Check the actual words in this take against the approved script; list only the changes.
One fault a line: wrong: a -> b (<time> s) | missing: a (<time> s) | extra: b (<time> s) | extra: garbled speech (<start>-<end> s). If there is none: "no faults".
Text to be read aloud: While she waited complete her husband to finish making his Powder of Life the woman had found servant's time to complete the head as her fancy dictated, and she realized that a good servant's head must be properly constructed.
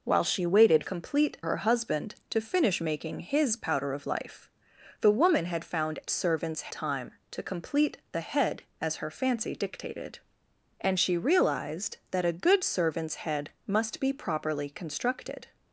no faults